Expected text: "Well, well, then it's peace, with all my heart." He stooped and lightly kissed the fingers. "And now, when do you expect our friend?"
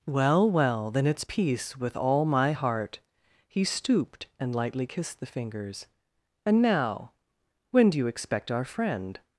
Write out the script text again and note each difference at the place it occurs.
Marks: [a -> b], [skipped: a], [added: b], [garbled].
"Well, well, then it's peace, with all my heart." He stooped and lightly kissed the fingers. "And now, when do you expect our friend?"